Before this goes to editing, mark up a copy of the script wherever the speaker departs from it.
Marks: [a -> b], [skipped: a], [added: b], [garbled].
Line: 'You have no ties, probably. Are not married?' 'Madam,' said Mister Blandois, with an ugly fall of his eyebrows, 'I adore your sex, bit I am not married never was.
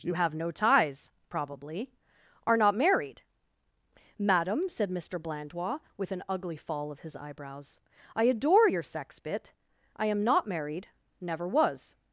'You have no ties, probably. Are not married?' 'Madam,' said Mister Blandois, with an ugly fall of his eyebrows, 'I adore your sex, bit I am not married never was.